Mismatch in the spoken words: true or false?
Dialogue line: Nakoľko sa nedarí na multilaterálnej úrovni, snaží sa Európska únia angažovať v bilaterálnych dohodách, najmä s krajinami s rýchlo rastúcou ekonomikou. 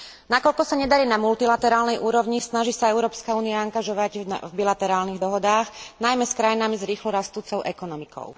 false